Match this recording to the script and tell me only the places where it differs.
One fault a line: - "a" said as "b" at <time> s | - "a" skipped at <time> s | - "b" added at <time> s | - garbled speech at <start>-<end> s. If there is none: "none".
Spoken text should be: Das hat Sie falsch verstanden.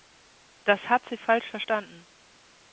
none